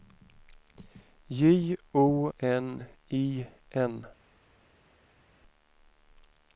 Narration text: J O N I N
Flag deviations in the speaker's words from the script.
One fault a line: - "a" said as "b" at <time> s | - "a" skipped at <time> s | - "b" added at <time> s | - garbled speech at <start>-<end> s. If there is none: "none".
none